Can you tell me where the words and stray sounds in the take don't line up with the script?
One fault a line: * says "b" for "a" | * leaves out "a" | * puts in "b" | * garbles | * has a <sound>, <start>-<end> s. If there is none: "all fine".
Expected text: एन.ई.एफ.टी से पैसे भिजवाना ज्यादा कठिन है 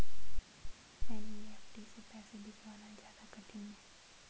* has a laugh, 0.6-0.7 s